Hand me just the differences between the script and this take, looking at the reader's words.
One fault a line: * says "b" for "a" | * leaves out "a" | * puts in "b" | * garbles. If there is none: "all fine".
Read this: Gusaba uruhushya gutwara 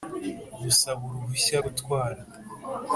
all fine